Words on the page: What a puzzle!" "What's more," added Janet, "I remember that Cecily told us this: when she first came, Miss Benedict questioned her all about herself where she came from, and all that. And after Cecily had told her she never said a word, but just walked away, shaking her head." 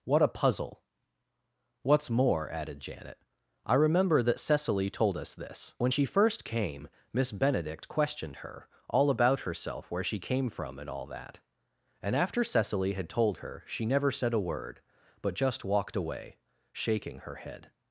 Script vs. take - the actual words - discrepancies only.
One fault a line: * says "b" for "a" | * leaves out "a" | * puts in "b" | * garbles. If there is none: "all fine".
all fine